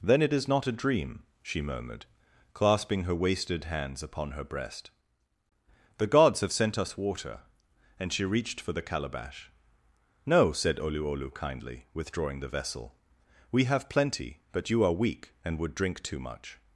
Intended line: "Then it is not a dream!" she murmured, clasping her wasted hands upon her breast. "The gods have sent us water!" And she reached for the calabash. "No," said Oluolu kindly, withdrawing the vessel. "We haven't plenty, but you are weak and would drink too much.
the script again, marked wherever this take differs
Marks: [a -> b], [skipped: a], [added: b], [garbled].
"Then it is not a dream!" she murmured, clasping her wasted hands upon her breast. "The gods have sent us water!" And she reached for the calabash. "No," said Oluolu kindly, withdrawing the vessel. "We [haven't -> have] plenty, but you are weak and would drink too much.